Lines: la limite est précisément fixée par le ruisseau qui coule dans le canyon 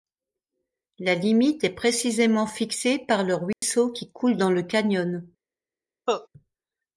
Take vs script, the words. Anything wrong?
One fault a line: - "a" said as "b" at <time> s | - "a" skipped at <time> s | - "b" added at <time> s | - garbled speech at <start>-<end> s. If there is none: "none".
none